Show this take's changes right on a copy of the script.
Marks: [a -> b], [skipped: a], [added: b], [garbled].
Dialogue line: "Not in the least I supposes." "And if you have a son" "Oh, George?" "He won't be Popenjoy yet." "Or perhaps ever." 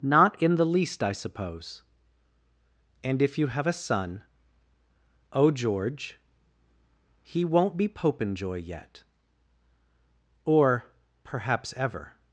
"Not in the least I [supposes." -> suppose] "And if you have a son" "Oh, George?" "He won't be Popenjoy yet." "Or perhaps ever."